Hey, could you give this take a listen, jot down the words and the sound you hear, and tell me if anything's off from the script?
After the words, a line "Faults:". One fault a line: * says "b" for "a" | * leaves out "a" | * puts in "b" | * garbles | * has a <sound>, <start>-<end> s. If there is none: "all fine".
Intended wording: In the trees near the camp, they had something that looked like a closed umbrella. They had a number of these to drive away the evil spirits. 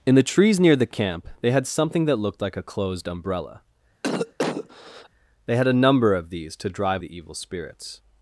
In the trees near the camp, they had something that looked like a closed umbrella. They had a number of these to drive the evil spirits.
Faults:
* has a cough, 4.0-5.1 s
* leaves out "away"